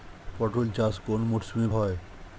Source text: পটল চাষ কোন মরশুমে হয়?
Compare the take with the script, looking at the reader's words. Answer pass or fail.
pass